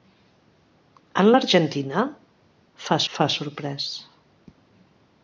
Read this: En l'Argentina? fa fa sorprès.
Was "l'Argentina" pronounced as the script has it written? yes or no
yes